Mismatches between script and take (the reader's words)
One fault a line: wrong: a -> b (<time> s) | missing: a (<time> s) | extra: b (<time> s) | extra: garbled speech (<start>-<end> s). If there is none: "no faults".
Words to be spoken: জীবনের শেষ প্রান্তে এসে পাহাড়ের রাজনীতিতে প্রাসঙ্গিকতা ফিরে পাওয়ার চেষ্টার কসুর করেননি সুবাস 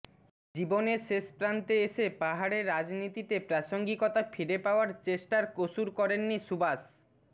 no faults